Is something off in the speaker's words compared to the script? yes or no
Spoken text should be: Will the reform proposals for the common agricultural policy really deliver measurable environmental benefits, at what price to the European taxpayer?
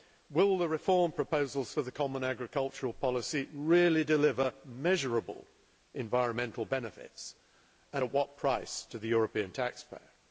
yes